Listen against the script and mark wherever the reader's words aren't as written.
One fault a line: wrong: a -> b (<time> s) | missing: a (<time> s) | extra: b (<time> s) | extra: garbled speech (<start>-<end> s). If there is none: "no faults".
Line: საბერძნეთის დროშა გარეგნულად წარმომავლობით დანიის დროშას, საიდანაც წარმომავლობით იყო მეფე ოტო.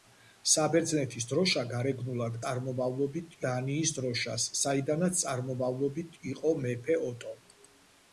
no faults